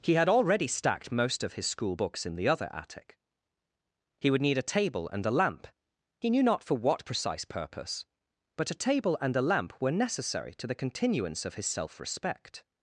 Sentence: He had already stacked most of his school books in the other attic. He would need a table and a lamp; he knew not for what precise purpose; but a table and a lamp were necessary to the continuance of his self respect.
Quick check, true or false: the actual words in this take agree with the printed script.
true